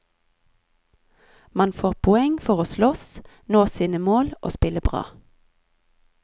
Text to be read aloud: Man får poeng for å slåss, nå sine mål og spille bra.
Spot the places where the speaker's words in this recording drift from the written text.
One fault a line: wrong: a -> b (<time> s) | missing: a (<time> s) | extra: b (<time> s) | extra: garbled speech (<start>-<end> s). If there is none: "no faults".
no faults